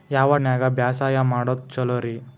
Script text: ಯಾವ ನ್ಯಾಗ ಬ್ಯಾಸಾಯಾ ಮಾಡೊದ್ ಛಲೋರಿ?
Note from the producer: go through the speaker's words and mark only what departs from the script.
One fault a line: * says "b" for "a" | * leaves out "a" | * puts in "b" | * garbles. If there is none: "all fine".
all fine